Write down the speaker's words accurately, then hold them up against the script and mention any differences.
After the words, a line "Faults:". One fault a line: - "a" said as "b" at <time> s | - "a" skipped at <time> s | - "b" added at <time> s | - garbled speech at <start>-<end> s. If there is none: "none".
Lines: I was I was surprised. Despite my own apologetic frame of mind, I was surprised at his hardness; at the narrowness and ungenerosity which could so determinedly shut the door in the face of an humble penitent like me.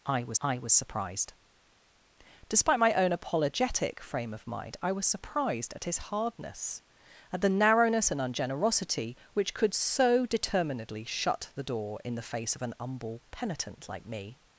I was I was surprised. Despite my own apologetic frame of mind, I was surprised at his hardness; at the narrowness and ungenerosity which could so determinedly shut the door in the face of an humble penitent like me.
Faults:
none